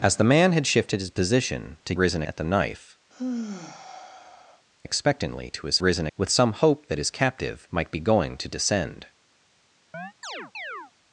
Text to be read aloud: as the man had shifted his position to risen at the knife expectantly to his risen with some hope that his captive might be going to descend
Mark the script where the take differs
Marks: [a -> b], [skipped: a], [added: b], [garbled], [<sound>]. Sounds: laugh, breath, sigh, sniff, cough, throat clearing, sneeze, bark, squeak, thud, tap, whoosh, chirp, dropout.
as the man had shifted his position to risen at the knife [sigh] expectantly to his risen with some hope that his captive might be going to descend [chirp]